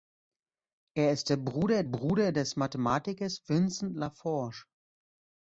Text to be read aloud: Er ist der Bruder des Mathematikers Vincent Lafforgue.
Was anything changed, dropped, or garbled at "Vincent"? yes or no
no